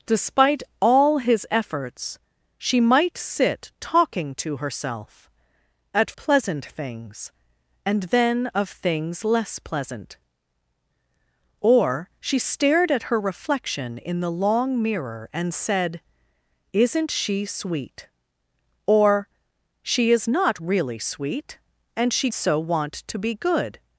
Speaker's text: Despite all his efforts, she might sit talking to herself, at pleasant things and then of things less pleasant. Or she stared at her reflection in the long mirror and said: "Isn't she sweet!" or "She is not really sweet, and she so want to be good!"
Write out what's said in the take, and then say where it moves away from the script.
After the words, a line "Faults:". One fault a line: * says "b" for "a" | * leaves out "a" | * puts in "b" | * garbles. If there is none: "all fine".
Despite all his efforts, she might sit talking to herself, at pleasant things and then of things less pleasant. Or she stared at her reflection in the long mirror and said: "Isn't she sweet!" or "She is not really sweet, and she so want to be good!"
Faults:
all fine